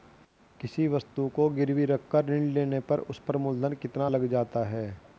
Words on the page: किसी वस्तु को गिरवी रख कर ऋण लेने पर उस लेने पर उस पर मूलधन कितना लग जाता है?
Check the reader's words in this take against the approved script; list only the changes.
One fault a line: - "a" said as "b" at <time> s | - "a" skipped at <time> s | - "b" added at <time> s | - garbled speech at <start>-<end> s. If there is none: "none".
- "लेने पर उस" skipped at 3.2 s